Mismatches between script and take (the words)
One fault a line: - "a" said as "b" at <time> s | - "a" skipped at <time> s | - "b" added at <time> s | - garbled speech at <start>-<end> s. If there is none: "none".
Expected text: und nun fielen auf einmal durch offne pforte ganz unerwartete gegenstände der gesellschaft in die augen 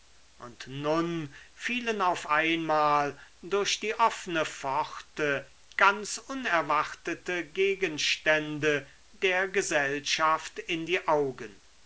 - "die" added at 3.8 s